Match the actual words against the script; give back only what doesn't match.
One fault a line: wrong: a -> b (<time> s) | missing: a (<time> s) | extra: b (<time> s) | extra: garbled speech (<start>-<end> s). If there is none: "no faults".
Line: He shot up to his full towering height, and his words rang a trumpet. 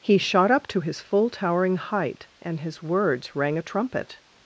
no faults